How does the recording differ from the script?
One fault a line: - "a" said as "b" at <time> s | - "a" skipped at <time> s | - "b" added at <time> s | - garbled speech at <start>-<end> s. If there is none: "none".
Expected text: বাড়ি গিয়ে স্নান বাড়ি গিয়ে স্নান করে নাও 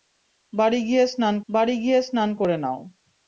none